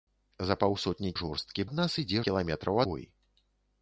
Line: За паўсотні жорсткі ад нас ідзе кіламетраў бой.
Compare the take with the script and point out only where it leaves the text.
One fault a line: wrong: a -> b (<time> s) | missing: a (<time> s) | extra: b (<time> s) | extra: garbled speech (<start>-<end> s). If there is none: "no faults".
no faults